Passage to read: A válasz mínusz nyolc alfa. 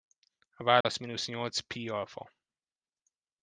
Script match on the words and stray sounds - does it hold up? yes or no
no